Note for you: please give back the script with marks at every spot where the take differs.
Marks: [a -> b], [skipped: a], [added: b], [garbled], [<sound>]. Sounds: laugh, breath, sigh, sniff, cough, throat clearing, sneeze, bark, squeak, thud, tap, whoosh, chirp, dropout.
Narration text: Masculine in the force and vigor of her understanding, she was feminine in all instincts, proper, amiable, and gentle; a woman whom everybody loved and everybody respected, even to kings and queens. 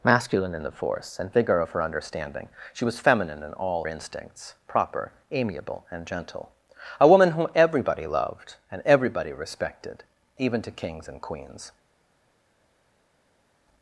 Masculine in the force and vigor of her understanding, she was feminine in all instincts, proper, amiable, and gentle; a woman whom everybody loved and everybody respected, even to kings and queens.